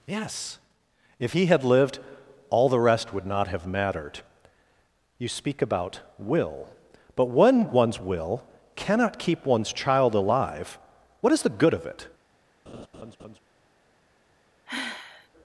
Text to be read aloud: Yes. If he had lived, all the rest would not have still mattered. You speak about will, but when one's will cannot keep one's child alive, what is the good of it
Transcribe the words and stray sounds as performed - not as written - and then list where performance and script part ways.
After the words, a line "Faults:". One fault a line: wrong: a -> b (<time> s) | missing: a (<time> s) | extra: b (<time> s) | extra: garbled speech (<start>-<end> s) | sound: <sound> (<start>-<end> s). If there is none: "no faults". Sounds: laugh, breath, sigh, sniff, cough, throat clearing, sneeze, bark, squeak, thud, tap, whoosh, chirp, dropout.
Yes. If he had lived, all the rest would not have mattered. You speak about will, but when one's will cannot keep one's child alive, what is the good of it
Faults:
missing: still (3.7 s)
sound: laugh (12.7-13.4 s)
sound: sigh (14.7-15.3 s)